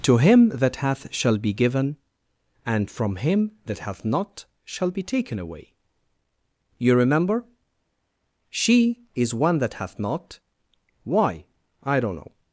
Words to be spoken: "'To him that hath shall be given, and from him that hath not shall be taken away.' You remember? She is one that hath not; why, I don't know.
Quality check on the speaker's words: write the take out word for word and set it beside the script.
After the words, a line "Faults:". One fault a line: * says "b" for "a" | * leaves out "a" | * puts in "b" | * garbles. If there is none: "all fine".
"'To him that hath shall be given, and from him that hath not shall be taken away.' You remember? She is one that hath not; why, I don't know.
Faults:
all fine